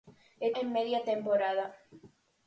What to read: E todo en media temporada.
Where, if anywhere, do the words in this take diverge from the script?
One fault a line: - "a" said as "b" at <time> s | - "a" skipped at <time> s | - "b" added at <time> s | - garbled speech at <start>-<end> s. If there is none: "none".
- "todo" skipped at 0.5 s